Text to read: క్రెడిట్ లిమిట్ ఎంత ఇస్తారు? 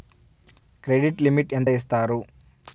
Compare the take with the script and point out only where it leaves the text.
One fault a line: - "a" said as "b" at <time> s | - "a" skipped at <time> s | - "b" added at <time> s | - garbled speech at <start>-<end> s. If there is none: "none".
none